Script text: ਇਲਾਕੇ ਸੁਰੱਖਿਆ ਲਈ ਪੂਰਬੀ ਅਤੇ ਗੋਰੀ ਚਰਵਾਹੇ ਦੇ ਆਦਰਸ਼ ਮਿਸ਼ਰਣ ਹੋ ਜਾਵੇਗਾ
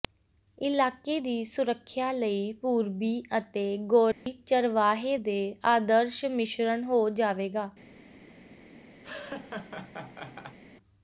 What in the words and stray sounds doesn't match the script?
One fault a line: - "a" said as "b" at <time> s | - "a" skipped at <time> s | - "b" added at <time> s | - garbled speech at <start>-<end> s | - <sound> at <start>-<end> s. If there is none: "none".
- "ਦੀ" added at 1.2 s
- dropout at 4.1-4.3 s
- laugh at 9.0-10.6 s